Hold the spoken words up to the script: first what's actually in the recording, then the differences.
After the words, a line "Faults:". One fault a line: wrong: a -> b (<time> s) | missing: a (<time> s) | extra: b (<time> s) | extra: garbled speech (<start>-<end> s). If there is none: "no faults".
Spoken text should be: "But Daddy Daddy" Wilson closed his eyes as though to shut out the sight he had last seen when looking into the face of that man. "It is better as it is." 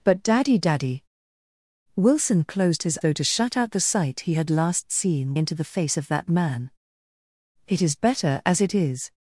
"But Daddy Daddy" Wilson closed his though to shut out the sight he had last seen into the face of that man. "It is better as it is."
Faults:
missing: eyes as (3.0 s)
missing: when looking (5.4 s)